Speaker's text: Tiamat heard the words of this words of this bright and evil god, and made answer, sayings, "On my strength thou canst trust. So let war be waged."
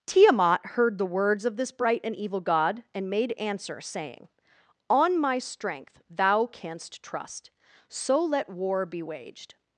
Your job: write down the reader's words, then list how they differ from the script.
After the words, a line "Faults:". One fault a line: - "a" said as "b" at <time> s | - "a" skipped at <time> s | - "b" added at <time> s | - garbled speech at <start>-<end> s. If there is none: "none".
Tiamat heard the words of this bright and evil god, and made answer, saying, "On my strength thou canst trust. So let war be waged."
Faults:
- "words of this" skipped at 1.7 s
- "sayings" said as "saying" at 3.8 s